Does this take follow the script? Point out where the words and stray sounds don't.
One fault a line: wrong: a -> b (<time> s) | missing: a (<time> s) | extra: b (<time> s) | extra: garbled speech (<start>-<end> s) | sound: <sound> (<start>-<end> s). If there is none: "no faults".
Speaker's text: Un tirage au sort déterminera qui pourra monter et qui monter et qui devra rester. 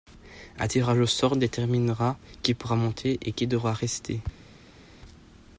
missing: monter et qui (3.5 s)